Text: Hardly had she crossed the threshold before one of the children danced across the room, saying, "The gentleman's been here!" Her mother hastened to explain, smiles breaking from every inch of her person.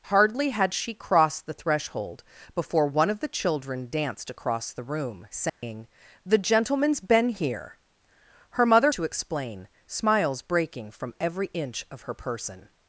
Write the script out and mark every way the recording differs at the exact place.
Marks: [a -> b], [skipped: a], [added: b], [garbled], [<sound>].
Hardly had she crossed the threshold before one of the children danced across the room, saying, [dropout] "The gentleman's been here!" Her mother [skipped: hastened] to explain, smiles breaking from every inch of her person.